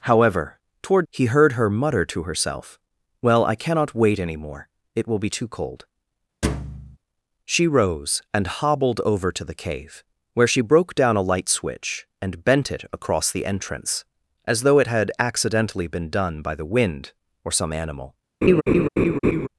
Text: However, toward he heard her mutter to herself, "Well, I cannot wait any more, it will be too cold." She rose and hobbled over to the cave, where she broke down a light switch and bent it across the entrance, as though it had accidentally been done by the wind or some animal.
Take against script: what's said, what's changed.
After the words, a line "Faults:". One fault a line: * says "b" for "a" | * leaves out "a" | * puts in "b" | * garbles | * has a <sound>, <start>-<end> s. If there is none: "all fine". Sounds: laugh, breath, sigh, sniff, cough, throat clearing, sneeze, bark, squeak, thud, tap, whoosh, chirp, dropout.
However, toward he heard her mutter to herself, "Well, I cannot wait any more, it will be too cold." She rose and hobbled over to the cave, where she broke down a light switch and bent it across the entrance, as though it had accidentally been done by the wind or some animal.
Faults:
* has a thud, 6.4-7.0 s
* has a laugh, 18.4-19.5 s